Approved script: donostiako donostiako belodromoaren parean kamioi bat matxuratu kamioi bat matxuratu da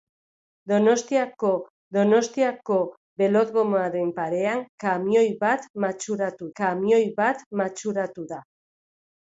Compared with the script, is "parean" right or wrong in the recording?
right